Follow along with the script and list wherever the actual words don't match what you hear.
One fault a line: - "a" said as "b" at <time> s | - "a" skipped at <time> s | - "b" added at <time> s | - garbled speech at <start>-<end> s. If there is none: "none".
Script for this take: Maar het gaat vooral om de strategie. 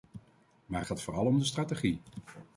- "het" skipped at 0.8 s